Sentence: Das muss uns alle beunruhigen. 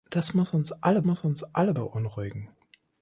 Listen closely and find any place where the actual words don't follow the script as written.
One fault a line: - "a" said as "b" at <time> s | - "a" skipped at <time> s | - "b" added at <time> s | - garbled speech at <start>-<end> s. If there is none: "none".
- "muss uns alle" added at 1.0 s